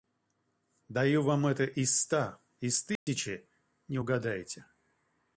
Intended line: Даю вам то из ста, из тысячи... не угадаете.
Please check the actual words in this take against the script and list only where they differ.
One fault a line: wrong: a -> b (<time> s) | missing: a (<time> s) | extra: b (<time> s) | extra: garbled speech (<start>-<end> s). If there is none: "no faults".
wrong: то -> это (1.4 s)